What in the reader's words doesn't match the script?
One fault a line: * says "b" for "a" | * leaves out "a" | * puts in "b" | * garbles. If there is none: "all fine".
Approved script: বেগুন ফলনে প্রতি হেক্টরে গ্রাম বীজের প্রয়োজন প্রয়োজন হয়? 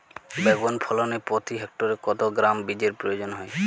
* puts in "কত"
* leaves out "প্রয়োজন"